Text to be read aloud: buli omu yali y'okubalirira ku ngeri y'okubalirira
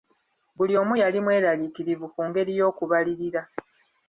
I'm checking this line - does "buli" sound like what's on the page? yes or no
yes